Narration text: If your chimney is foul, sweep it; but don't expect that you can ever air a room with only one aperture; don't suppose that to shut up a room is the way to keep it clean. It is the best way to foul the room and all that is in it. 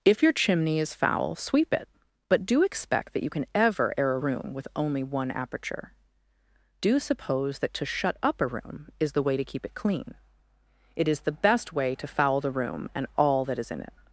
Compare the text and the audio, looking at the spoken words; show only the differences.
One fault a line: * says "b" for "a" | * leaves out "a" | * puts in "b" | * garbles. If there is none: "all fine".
* says "do" for "don't"
* says "do" for "don't"